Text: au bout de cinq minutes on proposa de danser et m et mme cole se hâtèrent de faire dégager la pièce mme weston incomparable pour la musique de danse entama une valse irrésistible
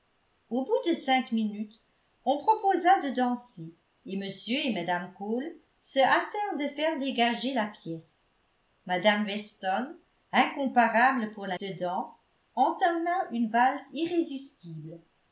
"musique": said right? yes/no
no